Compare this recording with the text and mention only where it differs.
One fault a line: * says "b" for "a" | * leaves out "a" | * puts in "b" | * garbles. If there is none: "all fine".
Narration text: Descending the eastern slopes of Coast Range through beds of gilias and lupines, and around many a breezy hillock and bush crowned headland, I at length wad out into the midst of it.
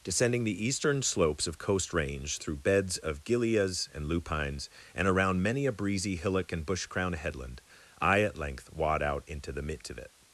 all fine